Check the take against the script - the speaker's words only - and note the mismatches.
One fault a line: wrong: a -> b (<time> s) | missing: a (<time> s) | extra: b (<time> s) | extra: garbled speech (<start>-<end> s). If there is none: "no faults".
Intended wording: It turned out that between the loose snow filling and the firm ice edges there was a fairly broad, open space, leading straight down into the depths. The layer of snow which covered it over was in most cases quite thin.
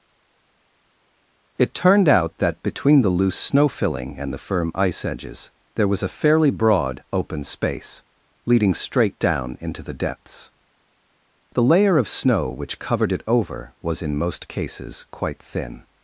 no faults